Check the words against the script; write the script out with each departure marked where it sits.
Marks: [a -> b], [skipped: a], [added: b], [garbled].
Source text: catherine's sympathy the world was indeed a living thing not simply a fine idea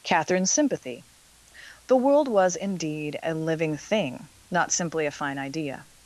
catherine's sympathy the world was indeed a living thing not simply a fine idea